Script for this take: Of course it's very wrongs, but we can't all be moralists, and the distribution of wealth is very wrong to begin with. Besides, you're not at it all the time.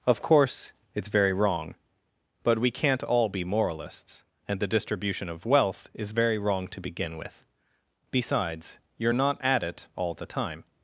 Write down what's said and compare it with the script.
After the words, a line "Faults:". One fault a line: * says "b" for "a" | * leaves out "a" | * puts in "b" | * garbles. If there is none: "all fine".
Of course it's very wrong, but we can't all be moralists, and the distribution of wealth is very wrong to begin with. Besides, you're not at it all the time.
Faults:
* says "wrong" for "wrongs"